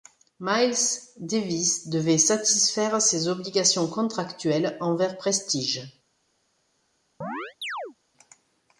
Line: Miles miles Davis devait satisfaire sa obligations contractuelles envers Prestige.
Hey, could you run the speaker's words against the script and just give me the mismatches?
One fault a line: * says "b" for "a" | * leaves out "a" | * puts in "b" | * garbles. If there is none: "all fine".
* leaves out "miles"
* says "ses" for "sa"